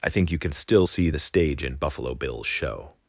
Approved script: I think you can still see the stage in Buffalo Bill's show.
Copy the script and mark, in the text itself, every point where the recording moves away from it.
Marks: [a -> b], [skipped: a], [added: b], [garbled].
I think you can still see the stage in Buffalo Bill's show.